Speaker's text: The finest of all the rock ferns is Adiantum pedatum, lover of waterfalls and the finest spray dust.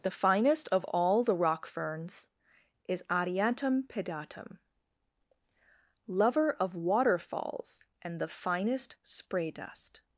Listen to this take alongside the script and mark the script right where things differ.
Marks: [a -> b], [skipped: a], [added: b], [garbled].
The finest of all the rock ferns is Adiantum pedatum, lover of waterfalls and the finest spray dust.